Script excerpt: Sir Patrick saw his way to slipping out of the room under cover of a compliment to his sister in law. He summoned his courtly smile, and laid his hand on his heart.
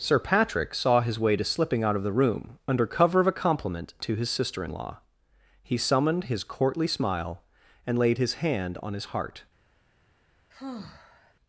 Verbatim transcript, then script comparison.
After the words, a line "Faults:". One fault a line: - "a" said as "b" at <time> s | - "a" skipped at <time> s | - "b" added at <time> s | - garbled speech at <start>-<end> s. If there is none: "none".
Sir Patrick saw his way to slipping out of the room under cover of a compliment to his sister in law. He summoned his courtly smile, and laid his hand on his heart.
Faults:
none